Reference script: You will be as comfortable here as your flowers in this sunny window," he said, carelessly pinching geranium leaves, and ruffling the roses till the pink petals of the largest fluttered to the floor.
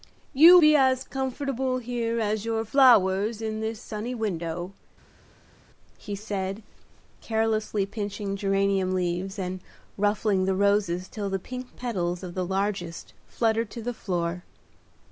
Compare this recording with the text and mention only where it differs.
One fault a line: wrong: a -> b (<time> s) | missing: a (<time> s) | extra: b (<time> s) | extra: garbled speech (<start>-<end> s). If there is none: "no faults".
missing: will (0.6 s)